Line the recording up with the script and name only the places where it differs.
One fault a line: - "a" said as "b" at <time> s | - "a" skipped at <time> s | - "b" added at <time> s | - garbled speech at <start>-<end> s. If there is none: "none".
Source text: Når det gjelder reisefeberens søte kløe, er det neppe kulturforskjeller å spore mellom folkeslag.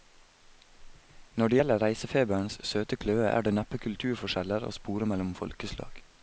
none